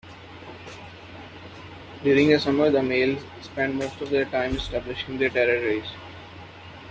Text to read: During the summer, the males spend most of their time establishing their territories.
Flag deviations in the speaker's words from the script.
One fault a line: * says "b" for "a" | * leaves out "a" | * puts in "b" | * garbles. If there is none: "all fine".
all fine